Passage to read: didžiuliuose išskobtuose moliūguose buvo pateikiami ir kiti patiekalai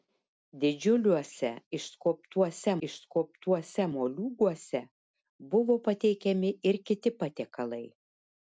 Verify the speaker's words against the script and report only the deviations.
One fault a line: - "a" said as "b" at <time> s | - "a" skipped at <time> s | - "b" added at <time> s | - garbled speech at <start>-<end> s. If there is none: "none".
- "išskobtuose" added at 2.9 s